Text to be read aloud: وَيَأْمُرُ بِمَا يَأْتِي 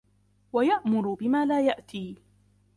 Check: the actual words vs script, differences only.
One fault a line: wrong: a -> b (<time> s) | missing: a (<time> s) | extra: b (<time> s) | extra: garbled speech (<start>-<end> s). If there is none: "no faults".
extra: لَا (1.4 s)